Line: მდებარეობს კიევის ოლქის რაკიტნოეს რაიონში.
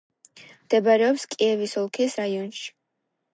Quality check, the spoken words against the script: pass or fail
fail